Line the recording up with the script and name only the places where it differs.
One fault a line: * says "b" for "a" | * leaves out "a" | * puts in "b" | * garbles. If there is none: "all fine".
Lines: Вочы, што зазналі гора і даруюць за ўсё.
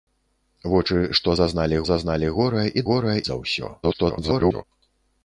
* puts in "зазналі"
* says "гора" for "даруюць"
* garbles